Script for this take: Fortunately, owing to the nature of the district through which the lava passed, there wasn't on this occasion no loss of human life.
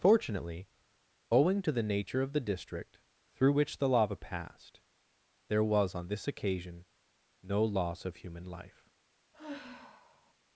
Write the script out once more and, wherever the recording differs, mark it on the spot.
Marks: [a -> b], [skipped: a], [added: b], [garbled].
Fortunately, owing to the nature of the district through which the lava passed, there [wasn't -> was] on this occasion no loss of human life.